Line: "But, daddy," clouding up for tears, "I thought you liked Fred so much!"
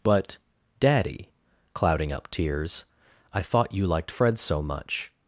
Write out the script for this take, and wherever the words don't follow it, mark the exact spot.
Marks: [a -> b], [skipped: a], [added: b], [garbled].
"But, daddy," clouding up [skipped: for] tears, "I thought you liked Fred so much!"